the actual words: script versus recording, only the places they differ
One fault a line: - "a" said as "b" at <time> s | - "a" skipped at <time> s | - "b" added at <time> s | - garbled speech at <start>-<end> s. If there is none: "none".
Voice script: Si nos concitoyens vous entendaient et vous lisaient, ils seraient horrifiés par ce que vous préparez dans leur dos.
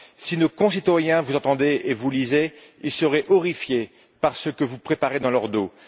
none